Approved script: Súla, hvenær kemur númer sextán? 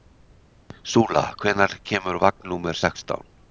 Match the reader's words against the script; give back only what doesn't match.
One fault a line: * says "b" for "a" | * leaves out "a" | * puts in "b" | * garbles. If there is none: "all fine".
* puts in "vagn"